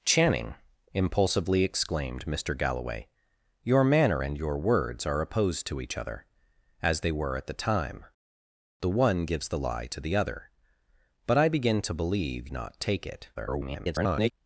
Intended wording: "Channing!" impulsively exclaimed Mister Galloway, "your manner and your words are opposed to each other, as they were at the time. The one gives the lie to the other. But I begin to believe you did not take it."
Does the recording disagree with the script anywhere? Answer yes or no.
yes